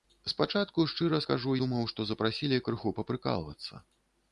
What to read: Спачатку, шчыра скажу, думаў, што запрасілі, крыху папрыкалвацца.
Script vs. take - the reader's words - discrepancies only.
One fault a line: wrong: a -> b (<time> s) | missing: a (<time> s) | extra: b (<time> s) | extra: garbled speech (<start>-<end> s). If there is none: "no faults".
no faults